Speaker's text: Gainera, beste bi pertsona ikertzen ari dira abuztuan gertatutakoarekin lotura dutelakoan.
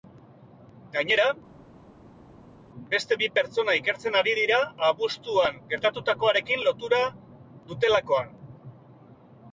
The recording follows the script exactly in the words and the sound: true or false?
true